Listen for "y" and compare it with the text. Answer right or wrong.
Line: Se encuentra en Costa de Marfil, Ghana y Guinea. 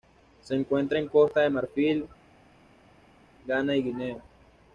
right